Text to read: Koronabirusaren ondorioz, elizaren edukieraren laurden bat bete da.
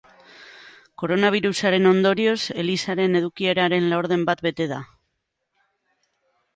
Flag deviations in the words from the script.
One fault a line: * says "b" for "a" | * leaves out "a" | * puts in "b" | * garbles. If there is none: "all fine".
all fine